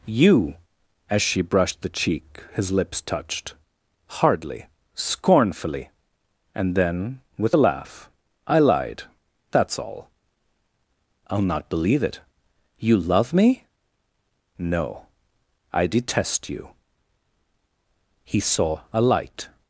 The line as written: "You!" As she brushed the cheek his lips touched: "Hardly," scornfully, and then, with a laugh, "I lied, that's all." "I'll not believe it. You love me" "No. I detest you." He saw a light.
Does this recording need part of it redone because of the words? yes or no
no